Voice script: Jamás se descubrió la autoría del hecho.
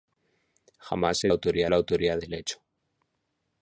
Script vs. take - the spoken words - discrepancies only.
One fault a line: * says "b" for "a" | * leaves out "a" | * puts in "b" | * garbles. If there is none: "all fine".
* says "autoría" for "descubrió"